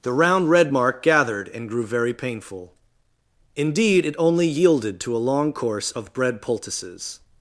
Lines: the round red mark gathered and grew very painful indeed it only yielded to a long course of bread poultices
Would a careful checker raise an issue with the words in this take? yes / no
no